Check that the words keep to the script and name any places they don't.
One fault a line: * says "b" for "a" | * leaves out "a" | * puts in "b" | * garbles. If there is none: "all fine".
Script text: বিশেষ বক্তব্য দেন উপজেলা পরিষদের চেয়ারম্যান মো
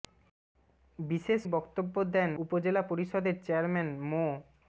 all fine